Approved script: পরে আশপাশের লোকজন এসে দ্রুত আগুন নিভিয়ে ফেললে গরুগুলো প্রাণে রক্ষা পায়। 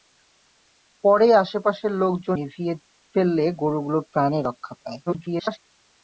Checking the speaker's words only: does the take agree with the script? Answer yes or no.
no